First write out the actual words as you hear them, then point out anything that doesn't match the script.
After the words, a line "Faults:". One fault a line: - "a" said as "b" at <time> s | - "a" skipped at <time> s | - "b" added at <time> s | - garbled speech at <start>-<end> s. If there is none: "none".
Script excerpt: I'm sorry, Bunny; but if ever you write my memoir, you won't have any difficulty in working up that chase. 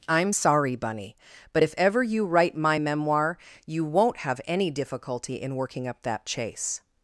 I'm sorry, Bunny; but if ever you write my memoir, you won't have any difficulty in working up that chase.
Faults:
none